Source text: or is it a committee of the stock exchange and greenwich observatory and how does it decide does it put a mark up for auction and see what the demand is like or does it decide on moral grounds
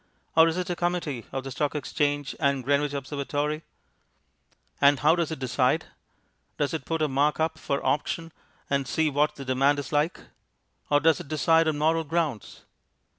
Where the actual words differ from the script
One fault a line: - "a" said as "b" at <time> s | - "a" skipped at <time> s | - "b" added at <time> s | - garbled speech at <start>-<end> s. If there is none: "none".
none